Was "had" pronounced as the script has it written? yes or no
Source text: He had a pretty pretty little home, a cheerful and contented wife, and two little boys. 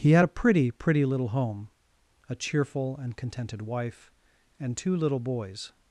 yes